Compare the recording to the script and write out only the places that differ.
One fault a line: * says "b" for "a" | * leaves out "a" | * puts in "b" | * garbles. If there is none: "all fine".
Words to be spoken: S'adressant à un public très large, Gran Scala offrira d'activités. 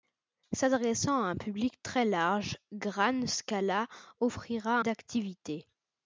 all fine